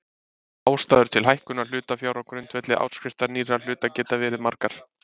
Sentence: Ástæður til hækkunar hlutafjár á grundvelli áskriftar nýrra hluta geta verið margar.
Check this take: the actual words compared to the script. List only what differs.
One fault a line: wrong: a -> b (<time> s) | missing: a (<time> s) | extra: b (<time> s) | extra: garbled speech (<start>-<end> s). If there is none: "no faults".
no faults